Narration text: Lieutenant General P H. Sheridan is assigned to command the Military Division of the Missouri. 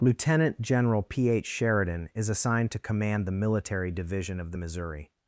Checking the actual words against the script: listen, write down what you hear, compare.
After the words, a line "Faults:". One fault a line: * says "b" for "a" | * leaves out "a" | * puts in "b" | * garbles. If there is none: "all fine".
Lieutenant General P H. Sheridan is assigned to command the Military Division of the Missouri.
Faults:
all fine